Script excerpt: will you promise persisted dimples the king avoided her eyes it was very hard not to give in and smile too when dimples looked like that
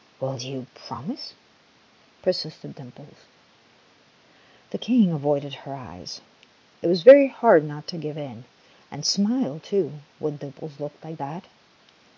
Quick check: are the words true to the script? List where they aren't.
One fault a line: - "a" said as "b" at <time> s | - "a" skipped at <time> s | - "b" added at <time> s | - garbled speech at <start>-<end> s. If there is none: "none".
none